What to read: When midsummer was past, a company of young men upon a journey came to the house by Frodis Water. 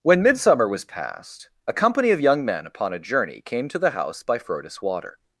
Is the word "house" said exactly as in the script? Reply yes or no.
yes